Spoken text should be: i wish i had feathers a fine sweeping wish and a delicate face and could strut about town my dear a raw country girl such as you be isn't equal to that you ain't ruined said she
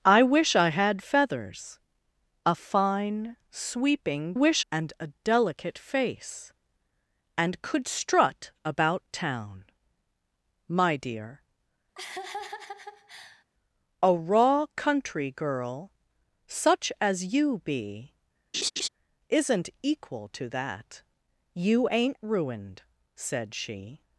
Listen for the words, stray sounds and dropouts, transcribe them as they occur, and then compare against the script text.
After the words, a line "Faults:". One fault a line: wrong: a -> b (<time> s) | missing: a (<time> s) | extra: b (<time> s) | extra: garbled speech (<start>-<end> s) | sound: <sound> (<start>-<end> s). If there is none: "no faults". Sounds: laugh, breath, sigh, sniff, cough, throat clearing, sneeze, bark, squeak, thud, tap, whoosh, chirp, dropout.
i wish i had feathers a fine sweeping wish and a delicate face and could strut about town my dear a raw country girl such as you be isn't equal to that you ain't ruined said she
Faults:
sound: laugh (12.0-13.4 s)
sound: laugh (18.5-18.9 s)